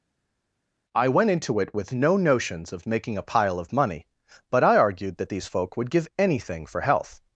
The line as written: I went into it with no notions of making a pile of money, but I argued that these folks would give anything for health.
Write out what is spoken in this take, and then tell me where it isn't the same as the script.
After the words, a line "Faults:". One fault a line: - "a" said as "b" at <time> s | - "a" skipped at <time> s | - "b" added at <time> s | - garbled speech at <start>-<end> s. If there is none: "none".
I went into it with no notions of making a pile of money, but I argued that these folk would give anything for health.
Faults:
- "folks" said as "folk" at 5.4 s